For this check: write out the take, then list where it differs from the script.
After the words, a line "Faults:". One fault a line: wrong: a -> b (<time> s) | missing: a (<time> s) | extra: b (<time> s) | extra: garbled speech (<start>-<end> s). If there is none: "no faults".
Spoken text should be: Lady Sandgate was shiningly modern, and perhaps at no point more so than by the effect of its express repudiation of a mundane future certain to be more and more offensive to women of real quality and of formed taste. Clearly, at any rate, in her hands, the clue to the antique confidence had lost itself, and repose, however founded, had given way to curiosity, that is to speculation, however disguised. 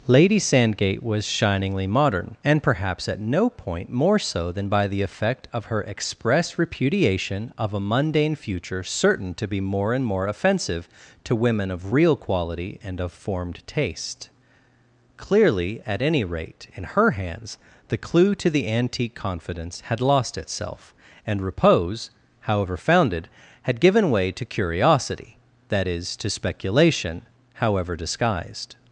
Lady Sandgate was shiningly modern, and perhaps at no point more so than by the effect of her express repudiation of a mundane future certain to be more and more offensive to women of real quality and of formed taste. Clearly, at any rate, in her hands, the clue to the antique confidence had lost itself, and repose, however founded, had given way to curiosity, that is to speculation, however disguised.
Faults:
wrong: its -> her (5.7 s)